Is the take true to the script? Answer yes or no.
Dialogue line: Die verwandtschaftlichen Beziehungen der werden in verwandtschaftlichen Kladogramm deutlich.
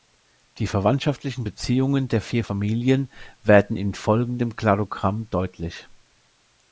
no